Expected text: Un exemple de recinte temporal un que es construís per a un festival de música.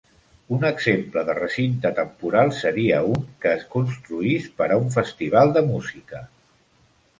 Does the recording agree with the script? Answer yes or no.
no